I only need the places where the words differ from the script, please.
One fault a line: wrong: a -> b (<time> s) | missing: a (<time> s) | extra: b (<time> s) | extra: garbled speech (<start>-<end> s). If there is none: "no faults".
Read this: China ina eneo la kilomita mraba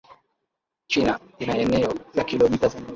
extra: za (2.7 s)